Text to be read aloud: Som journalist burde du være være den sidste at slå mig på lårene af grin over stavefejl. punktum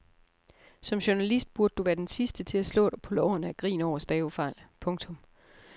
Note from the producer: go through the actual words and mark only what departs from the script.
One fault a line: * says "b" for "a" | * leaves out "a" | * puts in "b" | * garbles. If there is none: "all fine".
* leaves out "være"
* puts in "til"
* says "dig" for "mig"